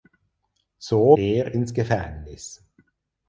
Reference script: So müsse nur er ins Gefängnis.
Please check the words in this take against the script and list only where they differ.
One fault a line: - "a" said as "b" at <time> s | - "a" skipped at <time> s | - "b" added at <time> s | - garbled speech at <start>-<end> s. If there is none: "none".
- "müsse nur" skipped at 1.1 s